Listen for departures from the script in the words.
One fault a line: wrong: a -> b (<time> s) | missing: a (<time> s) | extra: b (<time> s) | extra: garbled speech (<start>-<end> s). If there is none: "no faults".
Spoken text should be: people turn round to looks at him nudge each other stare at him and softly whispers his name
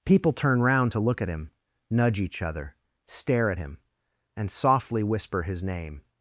wrong: looks -> look (1.0 s)
wrong: whispers -> whisper (5.0 s)